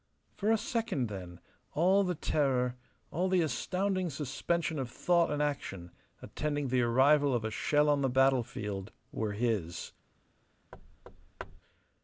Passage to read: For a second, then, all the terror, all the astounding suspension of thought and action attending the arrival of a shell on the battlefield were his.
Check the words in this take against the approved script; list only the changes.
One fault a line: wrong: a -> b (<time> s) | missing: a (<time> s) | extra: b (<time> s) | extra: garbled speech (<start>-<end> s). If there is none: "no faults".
no faults